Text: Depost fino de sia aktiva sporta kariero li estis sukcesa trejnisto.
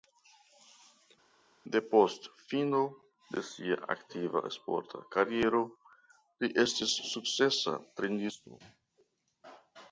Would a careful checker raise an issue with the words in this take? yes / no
no